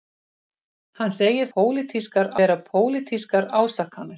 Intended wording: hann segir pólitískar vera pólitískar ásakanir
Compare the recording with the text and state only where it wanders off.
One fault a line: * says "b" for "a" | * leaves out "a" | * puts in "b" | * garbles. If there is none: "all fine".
all fine